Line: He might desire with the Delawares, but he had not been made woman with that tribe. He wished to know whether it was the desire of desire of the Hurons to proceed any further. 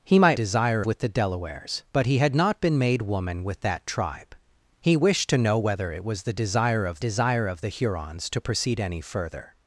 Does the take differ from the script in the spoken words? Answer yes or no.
no